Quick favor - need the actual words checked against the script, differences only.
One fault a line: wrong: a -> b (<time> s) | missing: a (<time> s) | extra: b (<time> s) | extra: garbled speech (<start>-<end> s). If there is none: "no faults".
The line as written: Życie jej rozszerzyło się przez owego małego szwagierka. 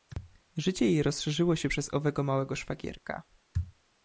no faults